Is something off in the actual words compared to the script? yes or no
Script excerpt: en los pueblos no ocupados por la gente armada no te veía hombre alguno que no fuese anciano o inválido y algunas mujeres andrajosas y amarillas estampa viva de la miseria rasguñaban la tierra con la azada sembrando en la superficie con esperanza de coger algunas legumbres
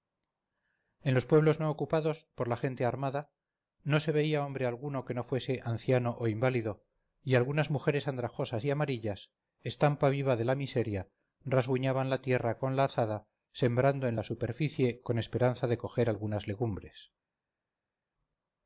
yes